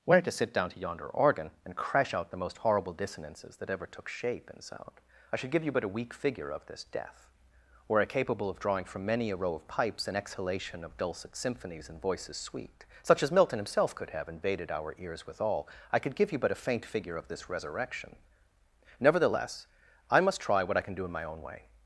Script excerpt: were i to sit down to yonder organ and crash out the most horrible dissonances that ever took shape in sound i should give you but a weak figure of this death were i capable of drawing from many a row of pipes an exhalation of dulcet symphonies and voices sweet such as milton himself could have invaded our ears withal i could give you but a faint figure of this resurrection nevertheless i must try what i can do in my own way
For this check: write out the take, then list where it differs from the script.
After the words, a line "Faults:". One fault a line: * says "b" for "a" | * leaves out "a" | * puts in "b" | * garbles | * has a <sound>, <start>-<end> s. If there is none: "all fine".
were i to sit down to yonder organ and crash out the most horrible dissonances that ever took shape in sound i should give you but a weak figure of this death were i capable of drawing from many a row of pipes an exhalation of dulcet symphonies and voices sweet such as milton himself could have invaded our ears withal i could give you but a faint figure of this resurrection nevertheless i must try what i can do in my own way
Faults:
all fine